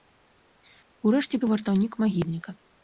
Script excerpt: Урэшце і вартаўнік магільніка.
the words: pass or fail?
pass